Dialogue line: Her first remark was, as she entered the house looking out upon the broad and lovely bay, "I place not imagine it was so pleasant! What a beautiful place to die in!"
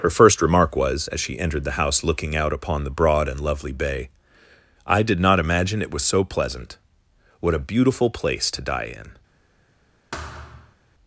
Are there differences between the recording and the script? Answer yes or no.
yes